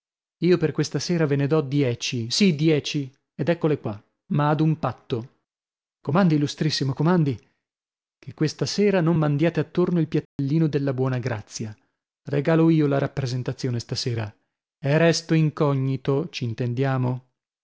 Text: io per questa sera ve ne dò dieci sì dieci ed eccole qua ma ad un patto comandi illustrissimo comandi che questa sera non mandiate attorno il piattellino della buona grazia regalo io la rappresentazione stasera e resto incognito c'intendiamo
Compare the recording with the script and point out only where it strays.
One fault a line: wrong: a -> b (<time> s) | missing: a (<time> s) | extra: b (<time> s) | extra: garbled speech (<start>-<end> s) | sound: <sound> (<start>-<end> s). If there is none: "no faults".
sound: dropout (10.3-10.4 s)